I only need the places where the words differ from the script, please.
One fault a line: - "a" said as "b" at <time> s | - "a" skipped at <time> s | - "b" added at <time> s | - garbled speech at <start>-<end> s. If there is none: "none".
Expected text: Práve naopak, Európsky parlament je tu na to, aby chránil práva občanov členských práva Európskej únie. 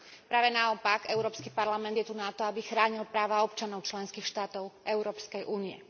- "práva" said as "štátov" at 4.3 s